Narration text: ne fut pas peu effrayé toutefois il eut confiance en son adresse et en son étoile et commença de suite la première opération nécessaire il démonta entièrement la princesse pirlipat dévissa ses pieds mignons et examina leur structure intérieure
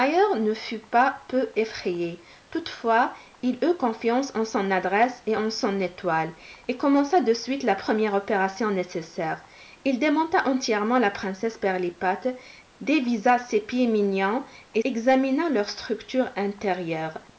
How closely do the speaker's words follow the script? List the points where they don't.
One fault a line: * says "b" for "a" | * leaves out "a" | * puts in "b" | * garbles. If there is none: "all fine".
all fine